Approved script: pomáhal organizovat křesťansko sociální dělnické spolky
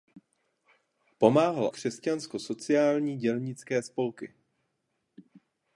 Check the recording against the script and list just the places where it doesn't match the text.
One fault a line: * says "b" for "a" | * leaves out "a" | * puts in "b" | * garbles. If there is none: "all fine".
* leaves out "organizovat"